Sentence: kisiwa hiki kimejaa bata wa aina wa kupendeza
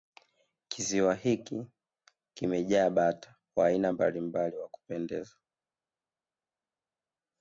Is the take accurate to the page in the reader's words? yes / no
no